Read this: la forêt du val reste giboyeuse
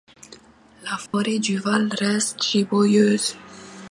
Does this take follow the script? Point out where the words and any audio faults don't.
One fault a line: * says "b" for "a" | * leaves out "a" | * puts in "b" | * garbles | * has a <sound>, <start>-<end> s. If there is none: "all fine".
* has a dropout, 1.1-1.1 s